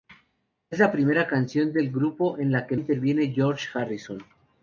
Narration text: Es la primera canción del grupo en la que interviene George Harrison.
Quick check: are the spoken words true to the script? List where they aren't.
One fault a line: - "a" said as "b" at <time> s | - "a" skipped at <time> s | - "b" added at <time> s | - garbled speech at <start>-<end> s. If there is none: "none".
none